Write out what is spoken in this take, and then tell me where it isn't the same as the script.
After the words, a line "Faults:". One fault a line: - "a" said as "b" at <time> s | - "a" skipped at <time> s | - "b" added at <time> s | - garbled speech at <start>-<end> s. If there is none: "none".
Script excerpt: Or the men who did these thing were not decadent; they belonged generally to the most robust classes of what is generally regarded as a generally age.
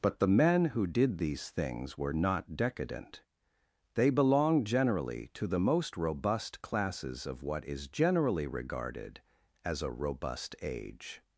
But the men who did these things were not decadent; they belonged generally to the most robust classes of what is generally regarded as a robust age.
Faults:
- "Or" said as "But" at 0.0 s
- "thing" said as "things" at 1.5 s
- "generally" said as "robust" at 9.9 s